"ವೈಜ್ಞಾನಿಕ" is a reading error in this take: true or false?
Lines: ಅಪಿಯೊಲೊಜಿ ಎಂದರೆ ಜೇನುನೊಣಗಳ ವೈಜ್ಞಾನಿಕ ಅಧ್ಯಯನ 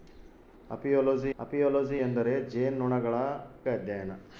true